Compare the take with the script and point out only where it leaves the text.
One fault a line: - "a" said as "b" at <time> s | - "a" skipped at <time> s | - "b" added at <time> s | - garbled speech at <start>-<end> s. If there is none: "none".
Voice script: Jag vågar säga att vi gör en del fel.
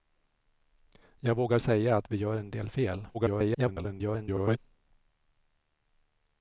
- garbled speech at 3.1-4.6 s